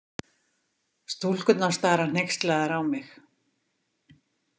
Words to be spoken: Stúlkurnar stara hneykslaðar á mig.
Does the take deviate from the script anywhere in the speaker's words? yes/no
no